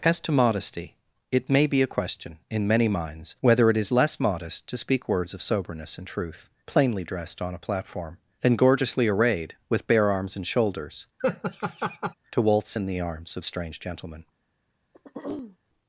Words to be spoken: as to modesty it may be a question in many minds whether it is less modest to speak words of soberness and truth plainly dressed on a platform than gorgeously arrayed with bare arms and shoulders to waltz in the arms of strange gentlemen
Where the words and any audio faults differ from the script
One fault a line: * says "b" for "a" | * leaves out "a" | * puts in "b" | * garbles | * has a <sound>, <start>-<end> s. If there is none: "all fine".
* has a laugh, 11.2-12.1 s
* has a throat clearing, 14.9-15.6 s